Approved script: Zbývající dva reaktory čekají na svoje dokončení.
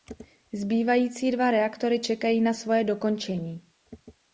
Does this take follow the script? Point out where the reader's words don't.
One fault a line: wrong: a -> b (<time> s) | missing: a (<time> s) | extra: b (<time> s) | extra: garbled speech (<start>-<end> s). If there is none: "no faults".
no faults